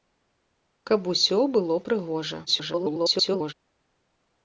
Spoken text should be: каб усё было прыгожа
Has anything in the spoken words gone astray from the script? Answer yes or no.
yes